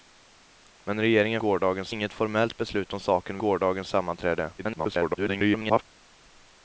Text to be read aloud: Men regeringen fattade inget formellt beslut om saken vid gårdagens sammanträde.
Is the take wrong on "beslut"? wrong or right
right